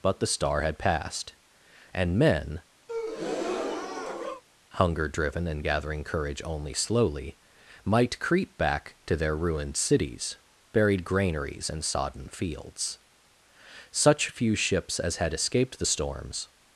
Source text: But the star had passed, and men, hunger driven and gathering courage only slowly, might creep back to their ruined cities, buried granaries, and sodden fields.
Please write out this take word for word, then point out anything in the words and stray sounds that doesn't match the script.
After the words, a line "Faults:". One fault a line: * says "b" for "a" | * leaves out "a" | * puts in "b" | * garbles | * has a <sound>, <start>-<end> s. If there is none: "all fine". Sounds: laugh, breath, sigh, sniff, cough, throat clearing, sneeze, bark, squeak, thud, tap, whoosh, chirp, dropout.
But the star had passed, and men, hunger driven and gathering courage only slowly, might creep back to their ruined cities, buried granaries, and sodden fields. Such few ships as had escaped the storms
Faults:
* has a breath, 2.9-4.4 s
* puts in "Such few ships as had escaped the storms"